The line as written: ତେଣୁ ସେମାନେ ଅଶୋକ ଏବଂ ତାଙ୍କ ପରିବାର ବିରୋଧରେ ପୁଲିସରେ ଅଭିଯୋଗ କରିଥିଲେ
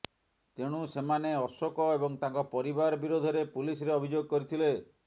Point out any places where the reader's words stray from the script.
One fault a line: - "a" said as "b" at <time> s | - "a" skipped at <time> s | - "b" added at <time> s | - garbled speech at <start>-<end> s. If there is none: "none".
none